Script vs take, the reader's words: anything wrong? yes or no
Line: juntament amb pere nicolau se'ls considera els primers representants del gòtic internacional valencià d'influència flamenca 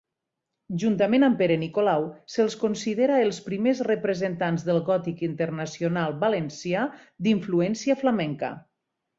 no